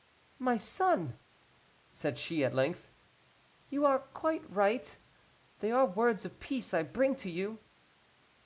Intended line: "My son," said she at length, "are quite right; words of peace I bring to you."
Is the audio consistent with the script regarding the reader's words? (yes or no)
no